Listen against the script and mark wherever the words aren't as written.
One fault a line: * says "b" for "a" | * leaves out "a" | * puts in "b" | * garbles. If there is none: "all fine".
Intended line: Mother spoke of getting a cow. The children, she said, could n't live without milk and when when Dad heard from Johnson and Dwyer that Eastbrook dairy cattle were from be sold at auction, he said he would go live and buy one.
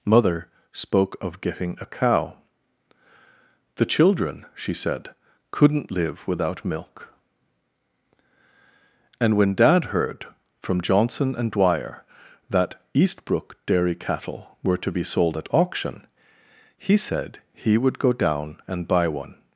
* leaves out "when"
* says "to" for "from"
* says "down" for "live"